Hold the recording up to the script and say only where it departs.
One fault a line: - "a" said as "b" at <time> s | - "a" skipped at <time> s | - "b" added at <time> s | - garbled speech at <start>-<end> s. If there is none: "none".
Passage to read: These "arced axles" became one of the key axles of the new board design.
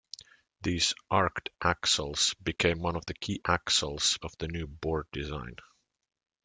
none